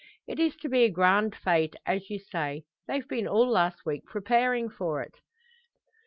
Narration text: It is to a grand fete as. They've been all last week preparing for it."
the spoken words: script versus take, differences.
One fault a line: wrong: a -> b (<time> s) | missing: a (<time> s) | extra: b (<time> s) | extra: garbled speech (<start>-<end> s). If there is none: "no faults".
extra: be (0.7 s)
extra: you say (2.1 s)